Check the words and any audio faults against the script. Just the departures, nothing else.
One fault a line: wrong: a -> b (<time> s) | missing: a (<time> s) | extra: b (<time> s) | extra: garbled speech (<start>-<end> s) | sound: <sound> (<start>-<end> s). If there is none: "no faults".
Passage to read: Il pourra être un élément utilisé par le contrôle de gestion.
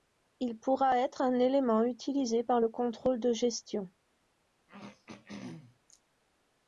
sound: throat clearing (4.7-6.0 s)